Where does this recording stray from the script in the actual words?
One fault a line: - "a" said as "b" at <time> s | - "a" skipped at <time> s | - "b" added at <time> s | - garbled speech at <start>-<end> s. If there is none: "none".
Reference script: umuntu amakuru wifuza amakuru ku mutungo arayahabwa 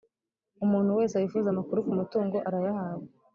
- "amakuru" said as "wese" at 1.0 s